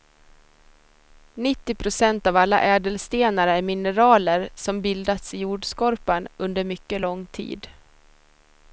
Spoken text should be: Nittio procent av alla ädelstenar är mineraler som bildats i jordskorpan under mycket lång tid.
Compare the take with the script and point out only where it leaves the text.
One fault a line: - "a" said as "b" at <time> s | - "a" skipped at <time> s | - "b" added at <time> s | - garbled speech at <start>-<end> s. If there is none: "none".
none